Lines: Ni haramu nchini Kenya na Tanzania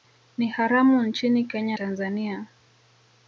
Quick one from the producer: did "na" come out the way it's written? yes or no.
no